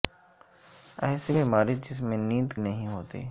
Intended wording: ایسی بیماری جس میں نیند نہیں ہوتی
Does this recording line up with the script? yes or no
yes